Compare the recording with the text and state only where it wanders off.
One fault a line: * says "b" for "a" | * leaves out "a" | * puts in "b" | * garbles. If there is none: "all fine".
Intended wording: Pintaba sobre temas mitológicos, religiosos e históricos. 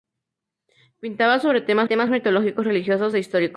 * puts in "temas"